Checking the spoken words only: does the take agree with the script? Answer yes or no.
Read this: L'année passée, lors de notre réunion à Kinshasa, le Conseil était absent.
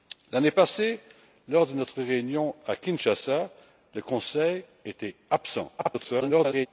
no